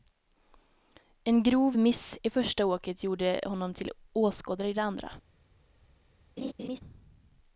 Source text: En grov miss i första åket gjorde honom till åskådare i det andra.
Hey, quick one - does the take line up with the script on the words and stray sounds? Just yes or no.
no